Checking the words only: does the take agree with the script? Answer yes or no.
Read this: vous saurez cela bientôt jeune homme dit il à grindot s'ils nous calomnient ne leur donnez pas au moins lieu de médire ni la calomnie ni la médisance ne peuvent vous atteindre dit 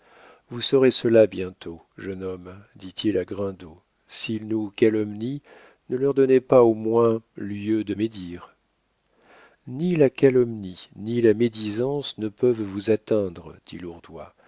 yes